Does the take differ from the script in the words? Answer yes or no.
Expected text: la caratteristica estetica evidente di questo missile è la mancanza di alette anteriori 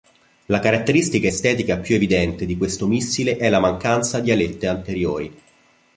yes